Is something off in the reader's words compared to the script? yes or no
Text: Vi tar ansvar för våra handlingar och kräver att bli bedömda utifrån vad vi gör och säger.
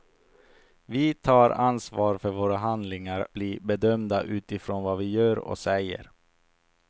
yes